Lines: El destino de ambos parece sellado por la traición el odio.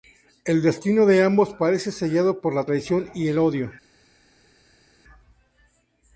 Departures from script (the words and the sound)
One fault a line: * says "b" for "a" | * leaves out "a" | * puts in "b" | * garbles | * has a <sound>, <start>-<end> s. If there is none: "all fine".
* puts in "y"